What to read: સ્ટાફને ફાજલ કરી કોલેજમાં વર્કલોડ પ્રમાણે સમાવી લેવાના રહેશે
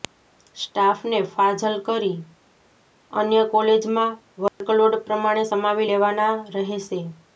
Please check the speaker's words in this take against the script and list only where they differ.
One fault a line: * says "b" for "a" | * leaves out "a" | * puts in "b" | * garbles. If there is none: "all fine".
* puts in "અન્ય"